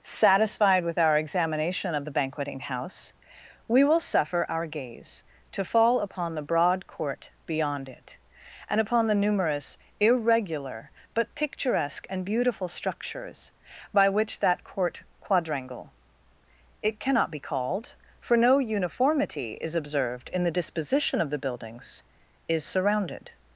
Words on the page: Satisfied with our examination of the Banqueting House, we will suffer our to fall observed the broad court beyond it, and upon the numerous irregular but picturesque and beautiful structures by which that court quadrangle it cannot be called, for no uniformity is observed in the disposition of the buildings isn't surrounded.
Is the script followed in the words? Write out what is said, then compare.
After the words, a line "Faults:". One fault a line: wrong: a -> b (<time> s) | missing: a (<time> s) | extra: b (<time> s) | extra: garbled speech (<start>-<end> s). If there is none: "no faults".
Satisfied with our examination of the Banqueting House, we will suffer our gaze to fall upon the broad court beyond it, and upon the numerous irregular but picturesque and beautiful structures by which that court quadrangle it cannot be called, for no uniformity is observed in the disposition of the buildings is surrounded.
Faults:
extra: gaze (4.7 s)
wrong: observed -> upon (6.0 s)
wrong: isn't -> is (22.5 s)